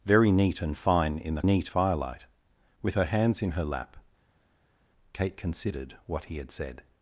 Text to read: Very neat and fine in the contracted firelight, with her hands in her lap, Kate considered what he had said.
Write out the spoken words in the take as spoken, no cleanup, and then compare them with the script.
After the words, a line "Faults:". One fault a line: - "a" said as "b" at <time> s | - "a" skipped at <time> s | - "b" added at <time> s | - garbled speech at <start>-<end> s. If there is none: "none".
Very neat and fine in the neat firelight, with her hands in her lap, Kate considered what he had said.
Faults:
- "contracted" said as "neat" at 1.4 s